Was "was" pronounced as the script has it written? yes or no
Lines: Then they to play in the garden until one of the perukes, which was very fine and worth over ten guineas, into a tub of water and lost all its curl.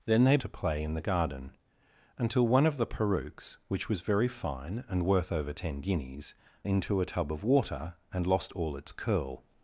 yes